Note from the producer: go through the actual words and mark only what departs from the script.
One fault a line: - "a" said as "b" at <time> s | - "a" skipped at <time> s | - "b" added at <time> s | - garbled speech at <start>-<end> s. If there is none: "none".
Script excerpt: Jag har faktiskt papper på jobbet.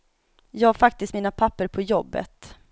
- "mina" added at 1.1 s